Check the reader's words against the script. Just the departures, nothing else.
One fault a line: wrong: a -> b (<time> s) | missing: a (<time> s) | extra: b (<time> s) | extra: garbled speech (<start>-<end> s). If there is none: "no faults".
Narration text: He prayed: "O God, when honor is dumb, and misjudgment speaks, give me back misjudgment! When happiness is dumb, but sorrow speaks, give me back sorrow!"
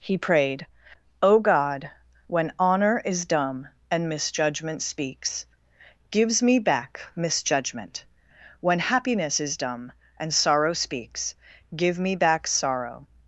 wrong: give -> gives (6.1 s)
wrong: but -> and (10.2 s)